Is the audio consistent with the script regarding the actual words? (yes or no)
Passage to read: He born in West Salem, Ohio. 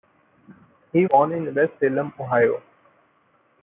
yes